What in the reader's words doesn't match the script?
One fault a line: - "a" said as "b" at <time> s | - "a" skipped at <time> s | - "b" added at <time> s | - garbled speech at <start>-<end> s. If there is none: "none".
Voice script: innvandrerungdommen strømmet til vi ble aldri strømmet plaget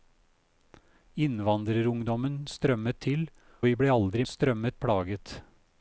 none